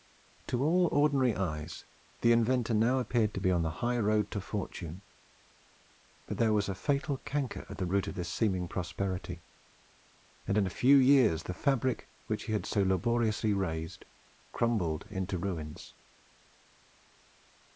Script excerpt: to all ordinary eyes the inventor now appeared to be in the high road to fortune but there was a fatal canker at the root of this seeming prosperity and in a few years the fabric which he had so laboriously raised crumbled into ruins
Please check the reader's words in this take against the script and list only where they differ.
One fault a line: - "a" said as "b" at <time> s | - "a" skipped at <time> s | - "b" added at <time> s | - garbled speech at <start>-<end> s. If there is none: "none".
- "in" said as "on" at 3.5 s